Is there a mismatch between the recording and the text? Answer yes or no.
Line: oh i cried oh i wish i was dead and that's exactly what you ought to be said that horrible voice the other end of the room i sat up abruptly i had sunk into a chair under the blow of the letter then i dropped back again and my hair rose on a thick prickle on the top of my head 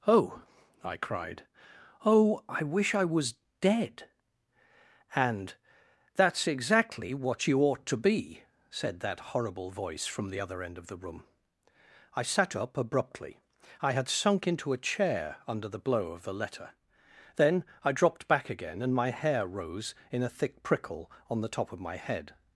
yes